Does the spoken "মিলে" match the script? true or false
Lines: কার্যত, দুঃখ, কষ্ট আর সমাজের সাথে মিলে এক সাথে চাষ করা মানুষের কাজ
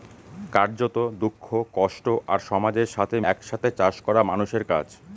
false